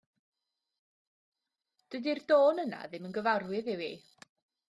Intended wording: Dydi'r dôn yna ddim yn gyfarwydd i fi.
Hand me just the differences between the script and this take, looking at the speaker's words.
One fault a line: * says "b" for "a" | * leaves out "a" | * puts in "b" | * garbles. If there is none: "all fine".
all fine